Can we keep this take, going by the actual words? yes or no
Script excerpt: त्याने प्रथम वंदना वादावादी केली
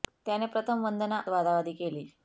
yes